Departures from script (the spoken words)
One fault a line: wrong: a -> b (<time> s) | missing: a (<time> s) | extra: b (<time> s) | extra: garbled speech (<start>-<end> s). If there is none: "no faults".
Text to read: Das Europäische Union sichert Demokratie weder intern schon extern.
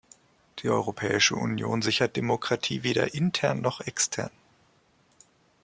wrong: Das -> Die (0.6 s)
wrong: schon -> noch (3.6 s)